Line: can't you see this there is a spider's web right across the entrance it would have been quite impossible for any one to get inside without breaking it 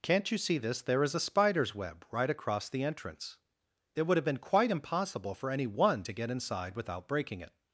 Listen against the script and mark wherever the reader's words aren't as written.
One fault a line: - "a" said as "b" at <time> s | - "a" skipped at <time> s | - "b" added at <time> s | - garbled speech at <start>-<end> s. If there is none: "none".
none